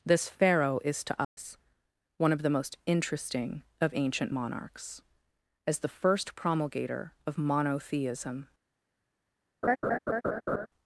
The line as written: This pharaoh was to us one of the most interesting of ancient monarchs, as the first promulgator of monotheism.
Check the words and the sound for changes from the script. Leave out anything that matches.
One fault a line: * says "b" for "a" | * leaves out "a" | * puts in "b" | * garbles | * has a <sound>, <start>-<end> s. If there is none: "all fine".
* says "is" for "was"
* has a dropout, 1.2-1.4 s
* has a laugh, 9.6-10.7 s